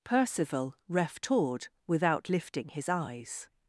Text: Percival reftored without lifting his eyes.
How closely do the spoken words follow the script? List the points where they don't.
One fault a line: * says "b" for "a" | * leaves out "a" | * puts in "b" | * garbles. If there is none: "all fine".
all fine